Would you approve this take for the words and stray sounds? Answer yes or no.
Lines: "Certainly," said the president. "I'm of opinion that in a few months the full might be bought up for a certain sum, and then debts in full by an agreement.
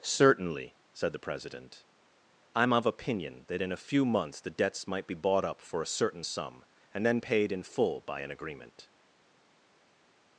no